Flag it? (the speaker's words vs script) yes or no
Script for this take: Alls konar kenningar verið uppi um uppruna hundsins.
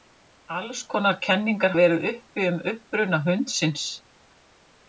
no